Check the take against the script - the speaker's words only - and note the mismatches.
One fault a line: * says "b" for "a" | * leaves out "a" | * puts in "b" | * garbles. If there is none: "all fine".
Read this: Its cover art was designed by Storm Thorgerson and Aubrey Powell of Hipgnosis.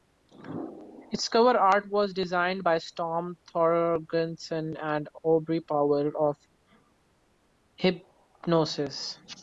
all fine